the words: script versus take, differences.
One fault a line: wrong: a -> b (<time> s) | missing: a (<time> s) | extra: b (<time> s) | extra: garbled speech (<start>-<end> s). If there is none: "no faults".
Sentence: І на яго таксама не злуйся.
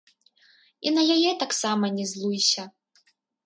wrong: яго -> яе (1.2 s)